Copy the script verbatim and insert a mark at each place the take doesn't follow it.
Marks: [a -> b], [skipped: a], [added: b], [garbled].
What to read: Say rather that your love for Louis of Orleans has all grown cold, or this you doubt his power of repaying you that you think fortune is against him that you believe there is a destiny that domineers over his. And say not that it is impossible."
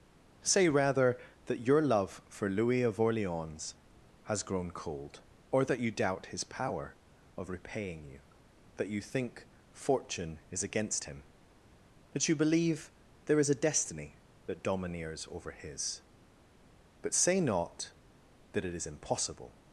Say rather that your love for Louis of Orleans has [skipped: all] grown cold, or [this -> that] you doubt his power of repaying you that you think fortune is against him that you believe there is a destiny that domineers over his. [And -> But] say not that it is impossible."